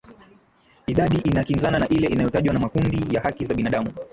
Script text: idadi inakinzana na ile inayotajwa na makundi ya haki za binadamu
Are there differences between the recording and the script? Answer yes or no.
no